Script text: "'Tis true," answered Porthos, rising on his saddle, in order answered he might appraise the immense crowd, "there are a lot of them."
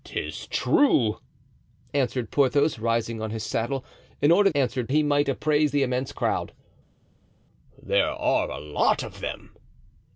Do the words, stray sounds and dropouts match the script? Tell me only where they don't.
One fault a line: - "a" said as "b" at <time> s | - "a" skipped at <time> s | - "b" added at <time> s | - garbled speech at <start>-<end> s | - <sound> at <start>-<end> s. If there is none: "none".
none